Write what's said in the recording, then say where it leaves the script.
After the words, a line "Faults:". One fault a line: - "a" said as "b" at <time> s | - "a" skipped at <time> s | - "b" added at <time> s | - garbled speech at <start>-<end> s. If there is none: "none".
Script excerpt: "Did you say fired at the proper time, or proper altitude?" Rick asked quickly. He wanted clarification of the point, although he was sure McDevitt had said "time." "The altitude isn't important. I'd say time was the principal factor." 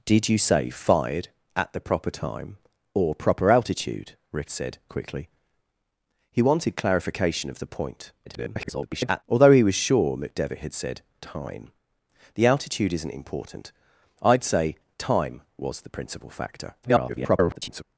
"Did you say fired at the proper time, or proper altitude?" Rick said quickly. He wanted clarification of the point, [garbled] although he was sure McDevitt had said "time." "The altitude isn't important. I'd say time was the principal factor." [garbled]
Faults:
- "asked" said as "said" at 4.5 s
- garbled speech at 8.3-9.2 s
- garbled speech at 16.8-17.8 s